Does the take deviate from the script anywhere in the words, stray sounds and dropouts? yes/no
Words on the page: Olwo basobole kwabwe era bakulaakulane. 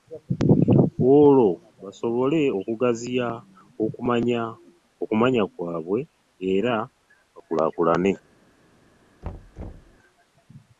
yes